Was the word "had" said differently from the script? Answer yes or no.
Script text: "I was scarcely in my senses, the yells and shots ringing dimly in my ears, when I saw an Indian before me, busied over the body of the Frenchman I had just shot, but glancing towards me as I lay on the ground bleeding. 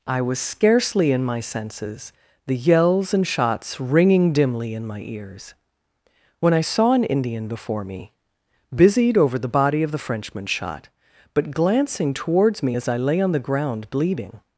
yes